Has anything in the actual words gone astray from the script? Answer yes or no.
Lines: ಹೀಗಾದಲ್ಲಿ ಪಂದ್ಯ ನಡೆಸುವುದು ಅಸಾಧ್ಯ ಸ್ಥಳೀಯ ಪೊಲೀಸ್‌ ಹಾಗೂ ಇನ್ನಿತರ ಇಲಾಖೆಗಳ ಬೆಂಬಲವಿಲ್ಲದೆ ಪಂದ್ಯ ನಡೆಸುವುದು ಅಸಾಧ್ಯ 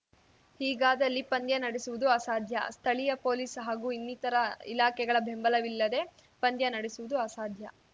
no